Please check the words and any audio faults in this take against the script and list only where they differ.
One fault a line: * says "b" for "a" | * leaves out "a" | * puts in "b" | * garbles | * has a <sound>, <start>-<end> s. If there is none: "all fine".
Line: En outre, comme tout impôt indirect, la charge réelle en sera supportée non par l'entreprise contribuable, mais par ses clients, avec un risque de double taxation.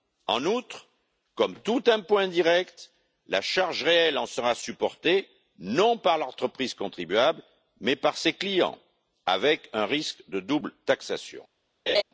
* has a laugh, 11.9-12.0 s